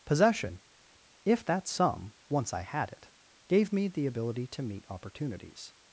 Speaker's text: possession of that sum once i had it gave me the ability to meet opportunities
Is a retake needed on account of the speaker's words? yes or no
yes